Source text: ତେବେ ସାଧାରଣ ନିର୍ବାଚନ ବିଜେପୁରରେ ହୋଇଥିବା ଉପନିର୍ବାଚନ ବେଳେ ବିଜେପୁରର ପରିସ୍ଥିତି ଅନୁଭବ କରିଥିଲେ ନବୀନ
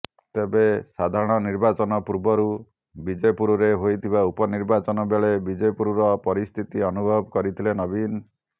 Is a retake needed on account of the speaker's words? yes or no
yes